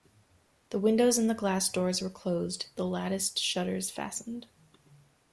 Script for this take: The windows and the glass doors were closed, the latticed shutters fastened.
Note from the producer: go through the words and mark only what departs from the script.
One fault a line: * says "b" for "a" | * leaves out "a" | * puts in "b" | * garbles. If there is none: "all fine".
all fine